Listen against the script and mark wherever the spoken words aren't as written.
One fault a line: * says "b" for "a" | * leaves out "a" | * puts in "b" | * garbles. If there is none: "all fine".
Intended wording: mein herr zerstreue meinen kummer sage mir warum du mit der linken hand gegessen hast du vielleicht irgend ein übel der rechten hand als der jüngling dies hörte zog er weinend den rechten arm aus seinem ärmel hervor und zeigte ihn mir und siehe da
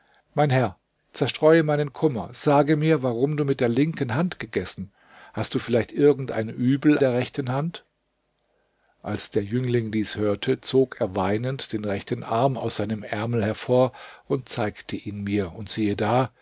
all fine